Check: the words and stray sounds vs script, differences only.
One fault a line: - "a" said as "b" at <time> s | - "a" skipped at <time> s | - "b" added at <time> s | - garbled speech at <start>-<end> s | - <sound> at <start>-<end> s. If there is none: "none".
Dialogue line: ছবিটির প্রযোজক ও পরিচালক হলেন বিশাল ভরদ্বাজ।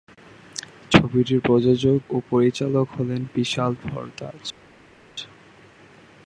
none